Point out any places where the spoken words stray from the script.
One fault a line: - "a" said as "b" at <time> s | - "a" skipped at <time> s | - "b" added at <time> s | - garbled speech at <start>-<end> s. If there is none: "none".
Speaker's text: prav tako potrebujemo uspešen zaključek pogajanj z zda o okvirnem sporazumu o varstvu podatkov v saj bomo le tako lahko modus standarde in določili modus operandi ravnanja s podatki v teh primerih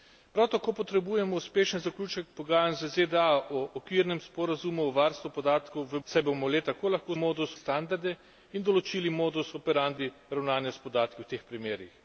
none